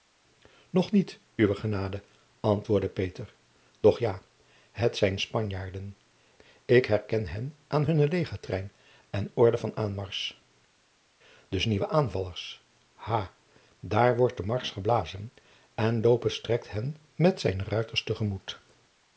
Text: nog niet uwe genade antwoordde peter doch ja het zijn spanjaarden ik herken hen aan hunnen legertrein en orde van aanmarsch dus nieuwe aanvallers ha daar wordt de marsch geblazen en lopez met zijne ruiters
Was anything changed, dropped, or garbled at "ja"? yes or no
no